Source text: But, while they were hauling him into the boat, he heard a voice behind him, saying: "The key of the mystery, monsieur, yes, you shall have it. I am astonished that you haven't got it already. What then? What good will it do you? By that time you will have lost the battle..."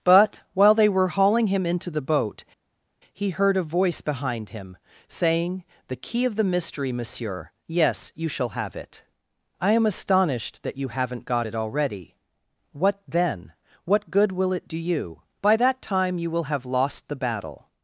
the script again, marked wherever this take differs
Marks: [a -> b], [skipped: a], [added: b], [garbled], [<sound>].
But, while they were hauling him into the boat, he heard a voice behind him, saying: "The key of the mystery, monsieur, yes, you shall have it. I am astonished that you haven't got it already. What then? What good will it do you? By that time you will have lost the battle..."